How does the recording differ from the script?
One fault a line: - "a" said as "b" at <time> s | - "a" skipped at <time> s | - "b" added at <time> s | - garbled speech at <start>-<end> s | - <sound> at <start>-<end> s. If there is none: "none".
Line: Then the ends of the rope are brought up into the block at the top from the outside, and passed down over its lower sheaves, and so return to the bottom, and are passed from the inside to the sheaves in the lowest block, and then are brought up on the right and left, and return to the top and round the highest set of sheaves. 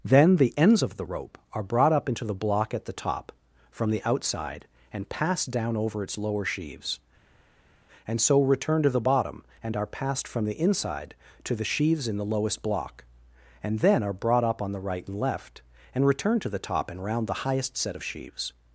none